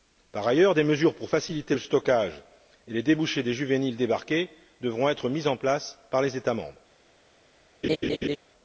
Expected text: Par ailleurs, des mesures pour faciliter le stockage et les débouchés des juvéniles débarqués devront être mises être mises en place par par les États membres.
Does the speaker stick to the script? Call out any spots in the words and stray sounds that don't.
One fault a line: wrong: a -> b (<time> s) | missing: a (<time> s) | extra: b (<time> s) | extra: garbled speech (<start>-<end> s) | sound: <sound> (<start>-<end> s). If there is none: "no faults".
missing: être mises (5.5 s)
missing: par (6.2 s)
sound: laugh (7.8-8.4 s)